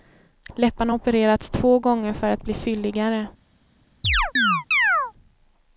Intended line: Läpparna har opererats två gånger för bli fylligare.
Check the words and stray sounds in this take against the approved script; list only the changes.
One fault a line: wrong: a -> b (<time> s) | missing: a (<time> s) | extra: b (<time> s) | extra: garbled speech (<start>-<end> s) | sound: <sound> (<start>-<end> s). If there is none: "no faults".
extra: att (2.3 s)
sound: chirp (4.0-5.1 s)